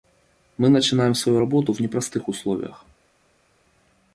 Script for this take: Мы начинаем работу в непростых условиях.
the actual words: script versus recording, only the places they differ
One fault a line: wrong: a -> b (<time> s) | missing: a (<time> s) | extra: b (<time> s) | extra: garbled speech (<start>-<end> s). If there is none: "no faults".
extra: свою (1.1 s)